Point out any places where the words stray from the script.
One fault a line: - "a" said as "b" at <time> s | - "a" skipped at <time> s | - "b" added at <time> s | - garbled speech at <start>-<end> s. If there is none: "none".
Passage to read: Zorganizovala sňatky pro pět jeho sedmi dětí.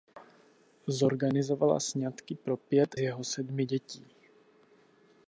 none